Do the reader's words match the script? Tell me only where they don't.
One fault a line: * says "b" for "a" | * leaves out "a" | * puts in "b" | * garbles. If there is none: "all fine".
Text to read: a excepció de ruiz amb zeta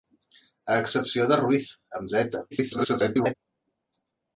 * garbles